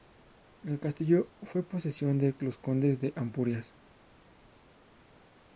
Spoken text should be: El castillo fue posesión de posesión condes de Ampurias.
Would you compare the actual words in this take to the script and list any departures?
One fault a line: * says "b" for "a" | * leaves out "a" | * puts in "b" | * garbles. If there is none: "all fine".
* says "los" for "posesión"